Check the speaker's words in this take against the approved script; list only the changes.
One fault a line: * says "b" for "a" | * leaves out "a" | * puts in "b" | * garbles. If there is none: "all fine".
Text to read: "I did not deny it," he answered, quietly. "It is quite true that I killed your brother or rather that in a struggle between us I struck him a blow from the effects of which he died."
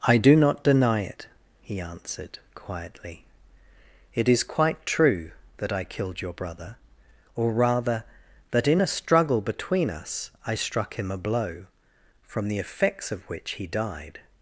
* says "do" for "did"